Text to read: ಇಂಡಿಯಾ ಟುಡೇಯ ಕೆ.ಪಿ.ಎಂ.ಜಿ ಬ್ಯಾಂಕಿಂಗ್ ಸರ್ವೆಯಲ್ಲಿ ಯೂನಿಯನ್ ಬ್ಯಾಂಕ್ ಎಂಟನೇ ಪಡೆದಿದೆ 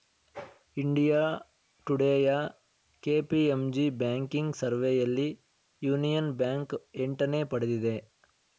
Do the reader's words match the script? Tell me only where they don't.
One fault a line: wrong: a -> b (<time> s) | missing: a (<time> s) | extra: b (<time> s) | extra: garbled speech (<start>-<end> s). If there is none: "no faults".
no faults